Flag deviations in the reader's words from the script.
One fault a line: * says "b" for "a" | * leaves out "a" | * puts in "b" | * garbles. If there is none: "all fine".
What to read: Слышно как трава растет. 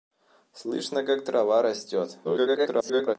* garbles